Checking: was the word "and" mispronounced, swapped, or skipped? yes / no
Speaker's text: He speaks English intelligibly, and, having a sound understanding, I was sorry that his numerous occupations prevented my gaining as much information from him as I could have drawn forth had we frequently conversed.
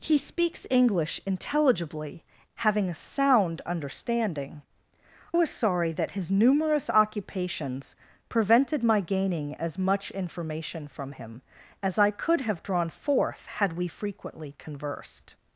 yes